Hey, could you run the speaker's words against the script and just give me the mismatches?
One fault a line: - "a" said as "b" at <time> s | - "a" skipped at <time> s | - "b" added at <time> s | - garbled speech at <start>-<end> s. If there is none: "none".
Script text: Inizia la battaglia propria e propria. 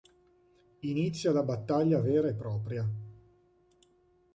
- "propria" said as "vera" at 2.0 s